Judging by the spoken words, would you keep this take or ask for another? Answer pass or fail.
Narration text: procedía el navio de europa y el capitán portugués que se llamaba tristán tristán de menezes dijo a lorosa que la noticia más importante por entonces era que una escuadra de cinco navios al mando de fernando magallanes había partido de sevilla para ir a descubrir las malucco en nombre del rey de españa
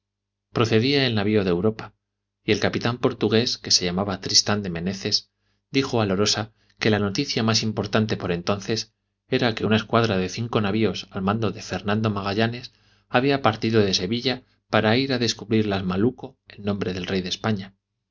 fail